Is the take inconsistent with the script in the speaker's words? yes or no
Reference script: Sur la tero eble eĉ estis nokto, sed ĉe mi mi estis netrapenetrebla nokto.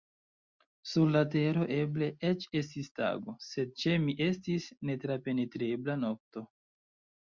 yes